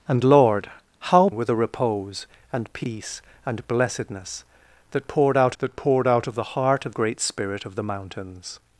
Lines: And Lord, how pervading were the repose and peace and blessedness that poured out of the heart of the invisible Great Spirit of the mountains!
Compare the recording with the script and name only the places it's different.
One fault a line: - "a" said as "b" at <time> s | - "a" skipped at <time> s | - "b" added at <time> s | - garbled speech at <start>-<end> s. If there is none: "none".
- "pervading" skipped at 1.3 s
- "that poured out" added at 5.6 s
- "the invisible" skipped at 6.9 s